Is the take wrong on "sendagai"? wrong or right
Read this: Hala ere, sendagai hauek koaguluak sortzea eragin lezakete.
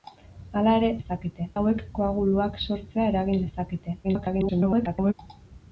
wrong